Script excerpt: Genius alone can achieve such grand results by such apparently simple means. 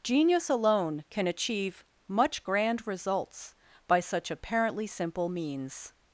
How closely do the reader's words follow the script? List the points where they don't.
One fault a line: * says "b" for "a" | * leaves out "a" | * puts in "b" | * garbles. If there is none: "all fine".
* says "much" for "such"